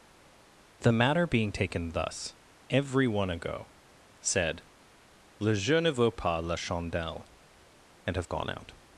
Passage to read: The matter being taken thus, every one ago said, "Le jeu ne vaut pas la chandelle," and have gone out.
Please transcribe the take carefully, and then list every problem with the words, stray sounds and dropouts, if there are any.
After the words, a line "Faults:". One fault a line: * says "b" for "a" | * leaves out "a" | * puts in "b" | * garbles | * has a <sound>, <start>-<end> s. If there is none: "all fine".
The matter being taken thus, every one ago said, "Le jeu ne vaut pas la chandelle," and have gone out.
Faults:
all fine